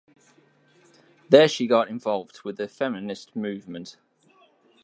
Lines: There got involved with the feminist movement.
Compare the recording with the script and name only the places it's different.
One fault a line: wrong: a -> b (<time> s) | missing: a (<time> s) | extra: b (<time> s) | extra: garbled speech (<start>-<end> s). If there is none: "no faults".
extra: she (1.5 s)